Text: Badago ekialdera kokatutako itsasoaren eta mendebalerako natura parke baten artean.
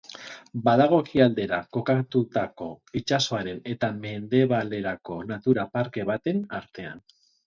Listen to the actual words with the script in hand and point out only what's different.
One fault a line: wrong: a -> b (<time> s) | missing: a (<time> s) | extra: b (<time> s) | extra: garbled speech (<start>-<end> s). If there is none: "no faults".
no faults